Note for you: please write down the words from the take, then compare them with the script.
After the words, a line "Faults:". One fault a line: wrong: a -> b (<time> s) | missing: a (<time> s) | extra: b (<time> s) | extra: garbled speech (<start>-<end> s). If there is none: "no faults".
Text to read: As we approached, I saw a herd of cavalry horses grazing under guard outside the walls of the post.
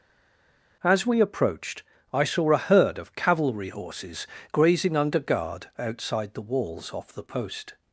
As we approached, I saw a herd of cavalry horses grazing under guard outside the walls off the post.
Faults:
wrong: of -> off (6.9 s)